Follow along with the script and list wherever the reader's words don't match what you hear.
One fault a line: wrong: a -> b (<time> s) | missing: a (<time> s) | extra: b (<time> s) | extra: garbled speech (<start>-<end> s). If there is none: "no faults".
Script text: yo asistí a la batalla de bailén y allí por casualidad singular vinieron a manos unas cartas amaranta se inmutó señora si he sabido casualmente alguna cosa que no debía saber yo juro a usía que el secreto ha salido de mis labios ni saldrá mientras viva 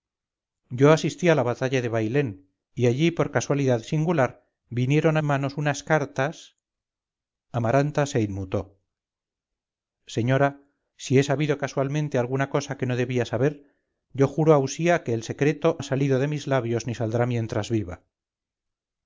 no faults